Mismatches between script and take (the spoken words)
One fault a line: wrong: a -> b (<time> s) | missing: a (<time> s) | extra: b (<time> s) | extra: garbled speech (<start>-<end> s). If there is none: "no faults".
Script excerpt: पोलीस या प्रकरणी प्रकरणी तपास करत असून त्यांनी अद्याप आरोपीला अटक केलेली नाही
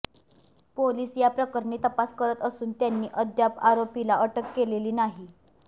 missing: प्रकरणी (1.8 s)